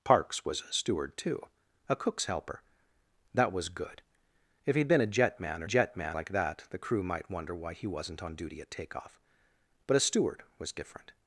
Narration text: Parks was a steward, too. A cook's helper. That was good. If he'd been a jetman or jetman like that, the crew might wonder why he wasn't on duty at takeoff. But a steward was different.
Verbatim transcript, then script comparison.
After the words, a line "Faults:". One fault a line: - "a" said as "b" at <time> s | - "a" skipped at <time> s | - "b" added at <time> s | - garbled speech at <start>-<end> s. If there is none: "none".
Parks was a steward, too. A cook's helper. That was good. If he'd been a jetman or jetman like that, the crew might wonder why he wasn't on duty at takeoff. But a steward was different.
Faults:
none